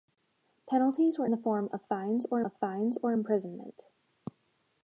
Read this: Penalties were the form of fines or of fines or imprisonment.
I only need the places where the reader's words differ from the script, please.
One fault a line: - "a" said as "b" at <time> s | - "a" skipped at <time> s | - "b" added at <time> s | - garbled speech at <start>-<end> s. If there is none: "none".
none